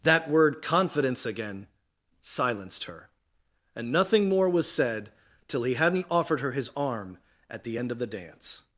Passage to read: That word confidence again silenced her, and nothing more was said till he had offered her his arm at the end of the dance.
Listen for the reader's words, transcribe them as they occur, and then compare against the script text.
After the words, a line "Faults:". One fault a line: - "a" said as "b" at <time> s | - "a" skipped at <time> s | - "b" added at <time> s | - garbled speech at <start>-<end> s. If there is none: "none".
That word confidence again silenced her, and nothing more was said till he hadn't offered her his arm at the end of the dance.
Faults:
- "had" said as "hadn't" at 5.8 s